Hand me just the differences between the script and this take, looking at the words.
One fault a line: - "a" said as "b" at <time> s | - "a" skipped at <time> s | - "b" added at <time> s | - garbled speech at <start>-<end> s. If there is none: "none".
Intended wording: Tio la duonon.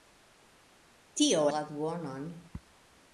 none